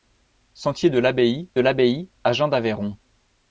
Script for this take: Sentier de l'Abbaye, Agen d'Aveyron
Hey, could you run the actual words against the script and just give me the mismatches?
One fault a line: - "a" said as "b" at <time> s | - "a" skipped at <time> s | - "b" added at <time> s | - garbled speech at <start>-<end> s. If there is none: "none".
- "l'Abbaye" added at 1.6 s